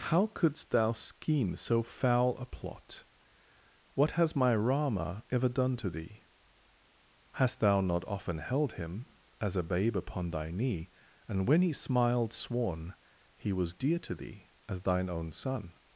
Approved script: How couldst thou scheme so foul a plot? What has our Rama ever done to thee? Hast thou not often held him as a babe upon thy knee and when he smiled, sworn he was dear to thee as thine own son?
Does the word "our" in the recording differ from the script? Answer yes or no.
yes